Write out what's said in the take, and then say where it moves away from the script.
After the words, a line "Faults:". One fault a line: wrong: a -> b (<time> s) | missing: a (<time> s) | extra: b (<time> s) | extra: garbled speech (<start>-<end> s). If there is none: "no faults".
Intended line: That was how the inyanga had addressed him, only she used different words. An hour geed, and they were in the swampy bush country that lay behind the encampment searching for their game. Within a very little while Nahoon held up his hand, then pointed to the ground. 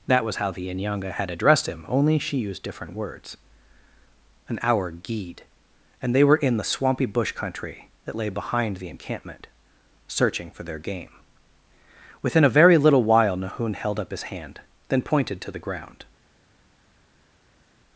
That was how the inyanga had addressed him, only she used different words. An hour geed, and they were in the swampy bush country that lay behind the encampment searching for their game. Within a very little while Nahoon held up his hand, then pointed to the ground.
Faults:
no faults